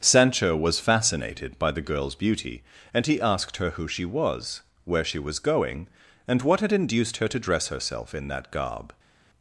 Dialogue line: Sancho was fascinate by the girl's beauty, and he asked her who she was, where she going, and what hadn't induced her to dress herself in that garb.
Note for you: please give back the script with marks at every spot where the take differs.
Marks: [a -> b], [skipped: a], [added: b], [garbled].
Sancho was [fascinate -> fascinated] by the girl's beauty, and he asked her who she was, where she [added: was] going, and what [hadn't -> had] induced her to dress herself in that garb.